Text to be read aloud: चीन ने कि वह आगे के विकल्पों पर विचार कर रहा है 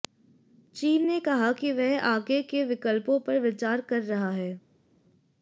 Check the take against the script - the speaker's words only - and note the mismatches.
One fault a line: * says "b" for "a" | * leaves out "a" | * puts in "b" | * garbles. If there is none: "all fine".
* puts in "कहा"